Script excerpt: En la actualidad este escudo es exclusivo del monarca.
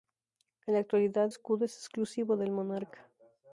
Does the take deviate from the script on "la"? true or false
false